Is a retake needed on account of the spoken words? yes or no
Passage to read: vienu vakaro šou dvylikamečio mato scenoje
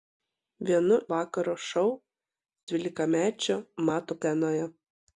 no